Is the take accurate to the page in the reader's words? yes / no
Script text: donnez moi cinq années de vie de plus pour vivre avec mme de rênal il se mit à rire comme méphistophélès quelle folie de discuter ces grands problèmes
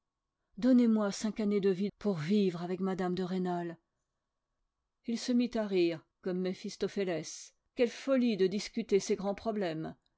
no